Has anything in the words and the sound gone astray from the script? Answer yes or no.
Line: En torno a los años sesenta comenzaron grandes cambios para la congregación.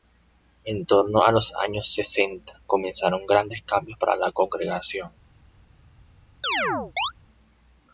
yes